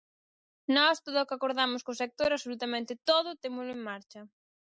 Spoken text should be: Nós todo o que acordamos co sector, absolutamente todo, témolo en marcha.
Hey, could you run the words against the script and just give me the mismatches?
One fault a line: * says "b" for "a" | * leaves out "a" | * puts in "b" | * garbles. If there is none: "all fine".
all fine